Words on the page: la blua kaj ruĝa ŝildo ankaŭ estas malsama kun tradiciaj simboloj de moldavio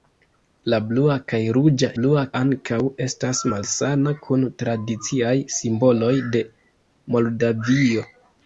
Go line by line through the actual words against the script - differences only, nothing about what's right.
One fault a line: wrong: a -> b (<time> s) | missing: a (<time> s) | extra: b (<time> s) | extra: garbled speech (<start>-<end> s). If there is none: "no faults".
wrong: ŝildo -> blua (2.0 s)